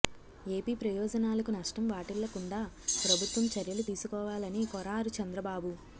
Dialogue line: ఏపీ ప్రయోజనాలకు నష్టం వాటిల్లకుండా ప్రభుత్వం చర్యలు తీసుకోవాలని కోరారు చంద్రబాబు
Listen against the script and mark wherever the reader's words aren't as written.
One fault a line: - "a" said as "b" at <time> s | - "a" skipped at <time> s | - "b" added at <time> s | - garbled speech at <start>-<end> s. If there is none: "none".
none